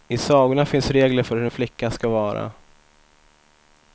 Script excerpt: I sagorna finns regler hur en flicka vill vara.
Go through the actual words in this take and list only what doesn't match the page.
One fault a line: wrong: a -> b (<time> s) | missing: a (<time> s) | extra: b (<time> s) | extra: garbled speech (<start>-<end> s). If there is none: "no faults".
extra: för (1.2 s)
wrong: vill -> ska (1.9 s)